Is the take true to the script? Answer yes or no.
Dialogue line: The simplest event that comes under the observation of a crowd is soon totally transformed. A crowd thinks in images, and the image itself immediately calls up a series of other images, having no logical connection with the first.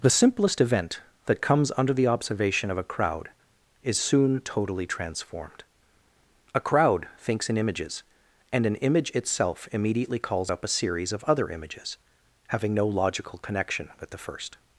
no